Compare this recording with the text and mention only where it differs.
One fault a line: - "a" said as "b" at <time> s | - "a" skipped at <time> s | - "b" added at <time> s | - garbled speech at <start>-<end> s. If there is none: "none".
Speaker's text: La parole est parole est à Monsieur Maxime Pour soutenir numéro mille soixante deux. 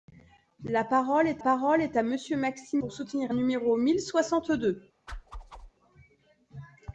none